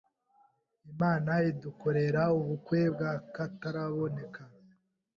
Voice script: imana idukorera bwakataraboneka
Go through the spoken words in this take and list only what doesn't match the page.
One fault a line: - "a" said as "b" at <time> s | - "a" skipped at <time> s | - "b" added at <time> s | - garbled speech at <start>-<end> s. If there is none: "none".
- "ubukwe" added at 2.4 s